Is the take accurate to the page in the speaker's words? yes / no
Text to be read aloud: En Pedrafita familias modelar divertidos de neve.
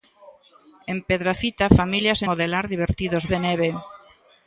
yes